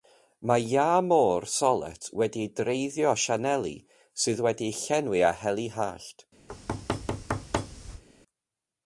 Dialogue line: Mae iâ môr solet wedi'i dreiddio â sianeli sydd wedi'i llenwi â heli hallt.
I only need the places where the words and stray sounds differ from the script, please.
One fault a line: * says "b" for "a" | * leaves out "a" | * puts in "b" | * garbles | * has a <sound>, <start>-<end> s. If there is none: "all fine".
* has a thud, 6.5-8.0 s